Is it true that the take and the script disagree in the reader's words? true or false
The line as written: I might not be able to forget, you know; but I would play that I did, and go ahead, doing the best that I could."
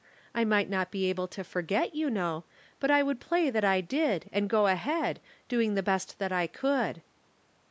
false